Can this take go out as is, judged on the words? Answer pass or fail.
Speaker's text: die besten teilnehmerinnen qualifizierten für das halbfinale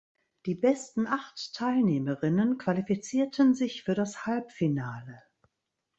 fail